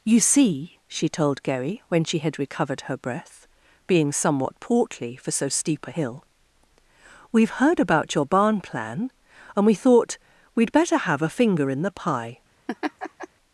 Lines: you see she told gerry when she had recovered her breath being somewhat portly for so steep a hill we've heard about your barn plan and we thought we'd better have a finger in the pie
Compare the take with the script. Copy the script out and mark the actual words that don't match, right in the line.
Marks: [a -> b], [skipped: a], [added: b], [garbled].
you see she told gerry when she had recovered her breath being somewhat portly for so steep a hill we've heard about your barn plan and we thought we'd better have a finger in the pie